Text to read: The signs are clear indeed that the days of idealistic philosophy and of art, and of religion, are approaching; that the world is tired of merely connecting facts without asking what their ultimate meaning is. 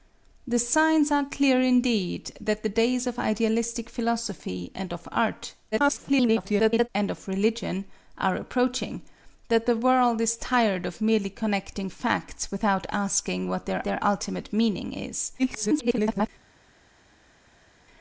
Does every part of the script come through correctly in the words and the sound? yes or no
no